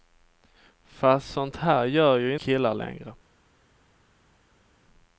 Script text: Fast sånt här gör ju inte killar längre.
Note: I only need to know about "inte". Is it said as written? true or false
false